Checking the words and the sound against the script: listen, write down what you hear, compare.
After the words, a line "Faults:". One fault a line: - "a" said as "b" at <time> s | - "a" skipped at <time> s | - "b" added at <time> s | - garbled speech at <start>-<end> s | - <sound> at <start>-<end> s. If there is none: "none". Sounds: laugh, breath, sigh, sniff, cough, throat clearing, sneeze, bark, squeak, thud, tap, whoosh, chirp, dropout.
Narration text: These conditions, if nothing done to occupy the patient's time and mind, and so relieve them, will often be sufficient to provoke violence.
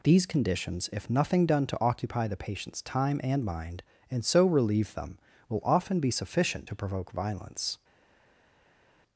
These conditions, if nothing done to occupy the patient's time and mind, and so relieve them, will often be sufficient to provoke violence.
Faults:
none